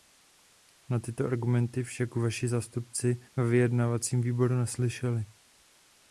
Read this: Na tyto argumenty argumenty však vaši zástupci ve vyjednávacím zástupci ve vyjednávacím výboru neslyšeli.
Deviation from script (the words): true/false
true